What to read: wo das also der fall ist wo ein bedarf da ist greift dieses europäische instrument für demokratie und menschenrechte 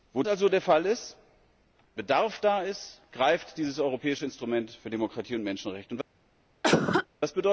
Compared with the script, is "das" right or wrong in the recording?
wrong